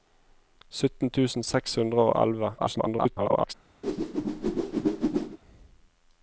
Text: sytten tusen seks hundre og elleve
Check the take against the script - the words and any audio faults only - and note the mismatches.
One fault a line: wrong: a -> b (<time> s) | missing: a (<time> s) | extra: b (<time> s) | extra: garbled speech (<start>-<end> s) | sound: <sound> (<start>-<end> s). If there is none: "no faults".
extra: garbled speech (2.6-3.5 s)
sound: whoosh (3.8-5.4 s)